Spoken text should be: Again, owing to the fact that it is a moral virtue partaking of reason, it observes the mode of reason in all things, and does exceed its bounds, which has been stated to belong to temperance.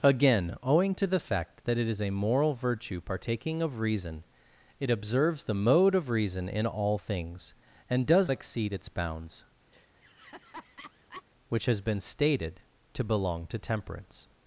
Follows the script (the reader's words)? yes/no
yes